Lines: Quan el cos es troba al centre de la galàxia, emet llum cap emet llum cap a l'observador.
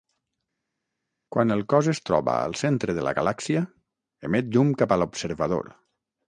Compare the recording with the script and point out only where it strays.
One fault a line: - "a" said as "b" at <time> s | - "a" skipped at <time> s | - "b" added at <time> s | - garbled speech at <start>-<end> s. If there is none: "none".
- "emet llum cap" skipped at 5.0 s